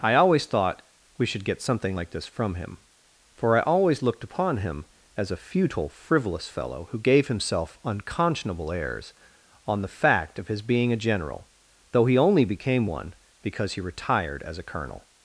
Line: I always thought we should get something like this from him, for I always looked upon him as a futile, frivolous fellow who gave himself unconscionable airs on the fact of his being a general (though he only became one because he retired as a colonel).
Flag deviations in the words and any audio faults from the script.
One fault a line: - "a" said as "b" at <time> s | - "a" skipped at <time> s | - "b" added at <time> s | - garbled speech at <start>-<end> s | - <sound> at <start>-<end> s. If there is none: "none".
none